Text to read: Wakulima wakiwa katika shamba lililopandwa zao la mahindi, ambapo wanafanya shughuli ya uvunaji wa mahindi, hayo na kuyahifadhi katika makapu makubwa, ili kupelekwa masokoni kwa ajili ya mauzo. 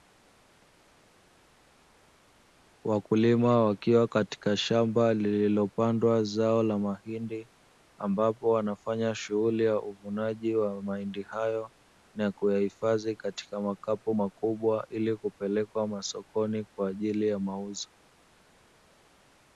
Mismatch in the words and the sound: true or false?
false